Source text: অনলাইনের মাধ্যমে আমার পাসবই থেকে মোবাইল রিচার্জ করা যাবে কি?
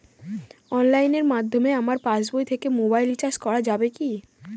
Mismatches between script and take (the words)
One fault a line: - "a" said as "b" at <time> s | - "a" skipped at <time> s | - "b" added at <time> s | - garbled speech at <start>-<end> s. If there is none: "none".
none